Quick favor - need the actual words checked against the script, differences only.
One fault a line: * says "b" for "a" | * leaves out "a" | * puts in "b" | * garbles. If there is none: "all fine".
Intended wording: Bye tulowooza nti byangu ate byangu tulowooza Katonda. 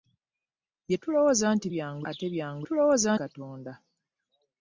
all fine